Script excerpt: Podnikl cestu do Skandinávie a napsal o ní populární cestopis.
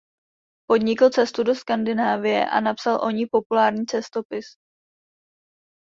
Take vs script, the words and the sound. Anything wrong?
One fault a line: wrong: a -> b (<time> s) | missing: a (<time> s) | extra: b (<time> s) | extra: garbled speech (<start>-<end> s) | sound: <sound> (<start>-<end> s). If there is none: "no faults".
no faults